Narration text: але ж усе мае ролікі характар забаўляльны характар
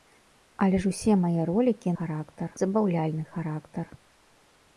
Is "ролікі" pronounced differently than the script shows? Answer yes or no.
no